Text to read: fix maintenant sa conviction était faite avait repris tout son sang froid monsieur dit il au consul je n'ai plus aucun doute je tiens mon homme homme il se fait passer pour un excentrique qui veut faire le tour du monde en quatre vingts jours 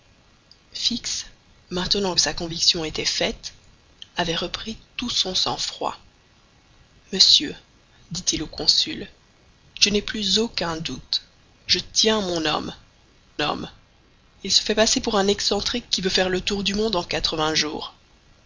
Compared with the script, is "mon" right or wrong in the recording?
right